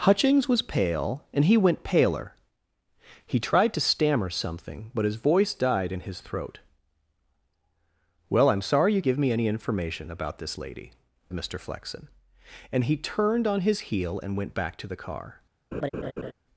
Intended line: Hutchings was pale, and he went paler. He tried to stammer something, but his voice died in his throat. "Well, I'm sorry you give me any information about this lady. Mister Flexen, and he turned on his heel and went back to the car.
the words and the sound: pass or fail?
fail